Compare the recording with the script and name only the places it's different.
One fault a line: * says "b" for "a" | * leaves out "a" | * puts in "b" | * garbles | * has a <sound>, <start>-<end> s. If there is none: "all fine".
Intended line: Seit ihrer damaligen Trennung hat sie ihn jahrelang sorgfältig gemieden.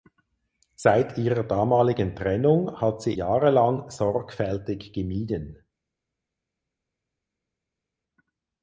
* leaves out "ihn"